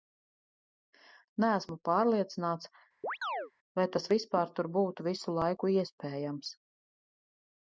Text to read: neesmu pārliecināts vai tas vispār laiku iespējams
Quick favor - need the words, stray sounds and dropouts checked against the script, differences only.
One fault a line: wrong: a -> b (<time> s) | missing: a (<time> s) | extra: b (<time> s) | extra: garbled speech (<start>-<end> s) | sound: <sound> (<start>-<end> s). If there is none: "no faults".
sound: chirp (3.0-3.5 s)
extra: tur būtu visu (4.6 s)